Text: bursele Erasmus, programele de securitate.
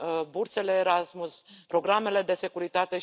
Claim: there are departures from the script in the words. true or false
false